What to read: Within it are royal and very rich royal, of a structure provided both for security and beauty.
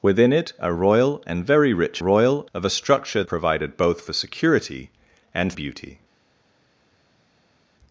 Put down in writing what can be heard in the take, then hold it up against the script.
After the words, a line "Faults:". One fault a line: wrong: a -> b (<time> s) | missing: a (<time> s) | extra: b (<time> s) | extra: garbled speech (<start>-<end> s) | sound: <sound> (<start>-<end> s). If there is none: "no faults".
Within it are royal and very rich royal, of a structure provided both for security and beauty.
Faults:
no faults